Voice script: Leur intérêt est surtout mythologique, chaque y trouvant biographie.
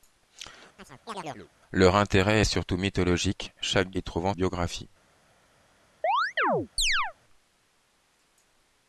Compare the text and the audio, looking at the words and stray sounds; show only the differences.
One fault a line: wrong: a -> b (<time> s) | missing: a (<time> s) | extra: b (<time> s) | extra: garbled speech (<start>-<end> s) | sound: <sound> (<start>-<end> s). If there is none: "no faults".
sound: chirp (0.8-1.5 s)
sound: chirp (6.0-7.1 s)